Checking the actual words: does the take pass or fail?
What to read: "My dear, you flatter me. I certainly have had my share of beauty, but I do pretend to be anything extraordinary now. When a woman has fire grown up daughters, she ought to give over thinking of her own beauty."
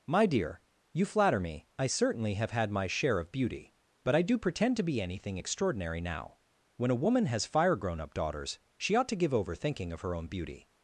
pass